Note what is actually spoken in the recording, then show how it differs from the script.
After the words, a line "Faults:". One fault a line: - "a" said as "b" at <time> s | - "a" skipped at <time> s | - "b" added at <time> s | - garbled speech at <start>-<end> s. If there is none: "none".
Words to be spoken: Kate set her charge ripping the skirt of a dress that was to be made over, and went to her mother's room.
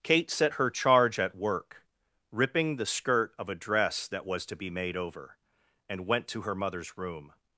Kate set her charge at work, ripping the skirt of a dress that was to be made over, and went to her mother's room.
Faults:
- "at work" added at 1.2 s